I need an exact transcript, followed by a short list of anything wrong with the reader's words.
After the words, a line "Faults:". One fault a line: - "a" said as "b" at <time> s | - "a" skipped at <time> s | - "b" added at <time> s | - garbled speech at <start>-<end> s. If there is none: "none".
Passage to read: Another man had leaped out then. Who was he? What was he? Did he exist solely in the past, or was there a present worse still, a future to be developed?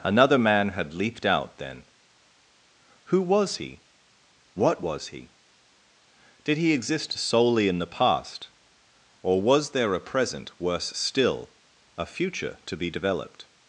Another man had leaped out then. Who was he? What was he? Did he exist solely in the past, or was there a present worse still, a future to be developed?
Faults:
none